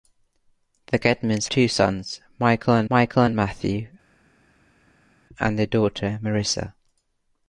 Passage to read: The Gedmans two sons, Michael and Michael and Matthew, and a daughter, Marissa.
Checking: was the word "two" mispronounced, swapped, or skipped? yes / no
no